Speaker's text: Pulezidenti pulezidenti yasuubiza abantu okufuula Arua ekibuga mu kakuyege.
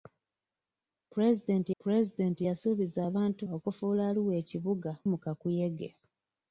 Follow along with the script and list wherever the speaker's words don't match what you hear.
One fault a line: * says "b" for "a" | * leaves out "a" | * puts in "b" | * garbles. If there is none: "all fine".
all fine